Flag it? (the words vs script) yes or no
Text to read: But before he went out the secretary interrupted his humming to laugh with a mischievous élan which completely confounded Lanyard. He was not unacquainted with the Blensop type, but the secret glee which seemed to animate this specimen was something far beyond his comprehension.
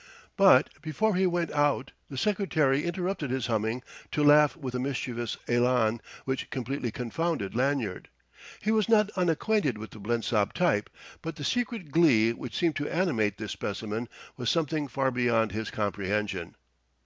no